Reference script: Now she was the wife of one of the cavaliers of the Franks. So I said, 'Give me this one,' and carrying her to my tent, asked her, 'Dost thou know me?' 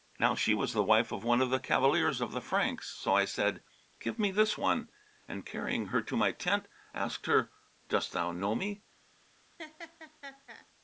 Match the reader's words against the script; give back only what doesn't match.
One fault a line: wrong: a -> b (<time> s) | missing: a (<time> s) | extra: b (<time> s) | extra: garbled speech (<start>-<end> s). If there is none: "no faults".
no faults